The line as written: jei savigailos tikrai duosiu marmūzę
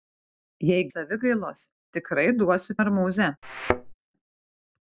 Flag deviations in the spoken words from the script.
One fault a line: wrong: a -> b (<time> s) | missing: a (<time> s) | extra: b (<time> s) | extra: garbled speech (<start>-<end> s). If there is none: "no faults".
no faults